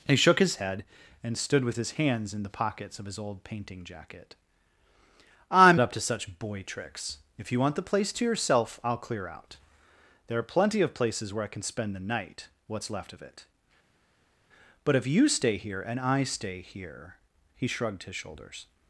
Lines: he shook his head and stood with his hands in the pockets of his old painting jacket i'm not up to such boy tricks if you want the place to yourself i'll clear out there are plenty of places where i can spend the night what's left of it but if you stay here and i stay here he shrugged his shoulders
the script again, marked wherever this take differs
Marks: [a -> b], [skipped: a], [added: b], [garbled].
he shook his head and stood with his hands in the pockets of his old painting jacket i'm [skipped: not] up to such boy tricks if you want the place to yourself i'll clear out there are plenty of places where i can spend the night what's left of it but if you stay here and i stay here he shrugged his shoulders